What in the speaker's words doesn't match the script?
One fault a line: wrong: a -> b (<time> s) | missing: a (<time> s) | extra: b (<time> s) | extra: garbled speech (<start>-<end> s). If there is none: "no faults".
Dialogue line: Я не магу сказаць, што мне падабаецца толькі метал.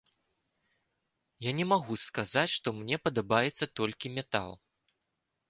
no faults